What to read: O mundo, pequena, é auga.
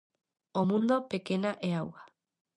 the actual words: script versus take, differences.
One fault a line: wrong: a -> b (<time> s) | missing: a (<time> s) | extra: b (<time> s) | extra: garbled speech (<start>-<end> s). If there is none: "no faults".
no faults